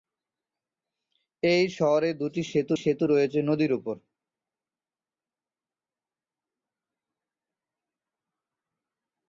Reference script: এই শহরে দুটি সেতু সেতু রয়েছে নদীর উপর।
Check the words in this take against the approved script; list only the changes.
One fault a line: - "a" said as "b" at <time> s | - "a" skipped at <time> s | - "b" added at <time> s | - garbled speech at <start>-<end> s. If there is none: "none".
none